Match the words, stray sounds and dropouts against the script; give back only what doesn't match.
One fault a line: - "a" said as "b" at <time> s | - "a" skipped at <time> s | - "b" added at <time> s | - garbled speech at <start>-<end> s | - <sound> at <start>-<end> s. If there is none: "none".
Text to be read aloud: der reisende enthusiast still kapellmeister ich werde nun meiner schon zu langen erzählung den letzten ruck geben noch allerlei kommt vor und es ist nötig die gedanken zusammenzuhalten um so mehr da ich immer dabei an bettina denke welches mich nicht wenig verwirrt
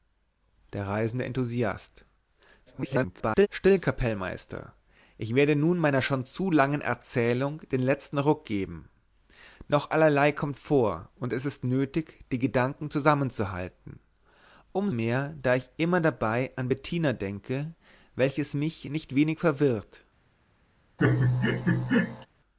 - garbled speech at 2.7-3.5 s
- "so" skipped at 14.9 s
- laugh at 21.0-22.3 s